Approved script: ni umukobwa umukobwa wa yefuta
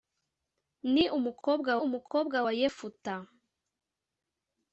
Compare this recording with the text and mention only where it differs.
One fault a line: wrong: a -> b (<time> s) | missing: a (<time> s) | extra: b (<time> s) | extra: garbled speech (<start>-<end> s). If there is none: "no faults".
no faults